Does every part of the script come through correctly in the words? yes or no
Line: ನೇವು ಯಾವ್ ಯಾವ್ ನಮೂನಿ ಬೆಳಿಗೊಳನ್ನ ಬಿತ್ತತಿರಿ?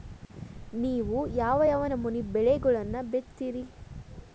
yes